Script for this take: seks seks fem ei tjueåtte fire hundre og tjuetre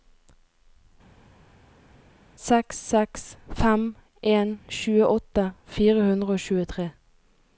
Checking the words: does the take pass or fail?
fail